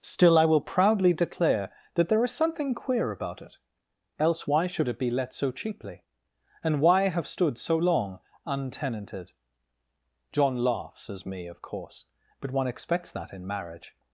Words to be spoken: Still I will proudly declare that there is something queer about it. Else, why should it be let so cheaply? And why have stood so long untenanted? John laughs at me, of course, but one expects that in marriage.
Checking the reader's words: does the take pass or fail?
fail